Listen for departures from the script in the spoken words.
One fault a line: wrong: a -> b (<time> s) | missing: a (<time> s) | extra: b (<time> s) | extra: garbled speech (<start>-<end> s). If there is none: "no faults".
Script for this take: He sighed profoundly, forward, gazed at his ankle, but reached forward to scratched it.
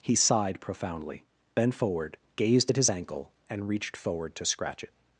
extra: bent (1.5 s)
wrong: but -> and (3.5 s)
wrong: scratched -> scratch (4.5 s)